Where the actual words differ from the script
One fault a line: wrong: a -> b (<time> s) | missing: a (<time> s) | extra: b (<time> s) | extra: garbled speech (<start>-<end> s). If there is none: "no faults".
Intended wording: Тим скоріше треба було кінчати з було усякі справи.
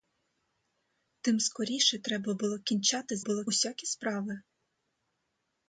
no faults